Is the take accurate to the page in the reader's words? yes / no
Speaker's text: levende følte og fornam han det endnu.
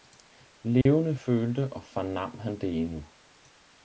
yes